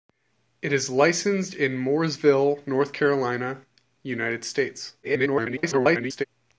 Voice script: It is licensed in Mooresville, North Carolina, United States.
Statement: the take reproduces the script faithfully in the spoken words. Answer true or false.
false